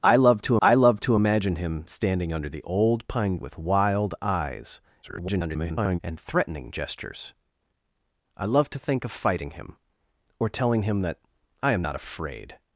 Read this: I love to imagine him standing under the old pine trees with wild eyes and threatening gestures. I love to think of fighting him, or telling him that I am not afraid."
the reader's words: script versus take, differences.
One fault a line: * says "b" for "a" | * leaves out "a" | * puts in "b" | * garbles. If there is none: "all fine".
* puts in "I love to"
* leaves out "trees"
* garbles